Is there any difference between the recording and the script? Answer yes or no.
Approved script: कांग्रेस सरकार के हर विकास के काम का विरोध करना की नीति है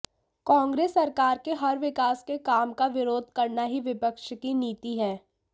yes